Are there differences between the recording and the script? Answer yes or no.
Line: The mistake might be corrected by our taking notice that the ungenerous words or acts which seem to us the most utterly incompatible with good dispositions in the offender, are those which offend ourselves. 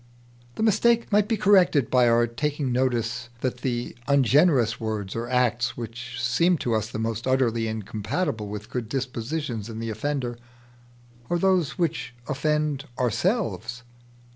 no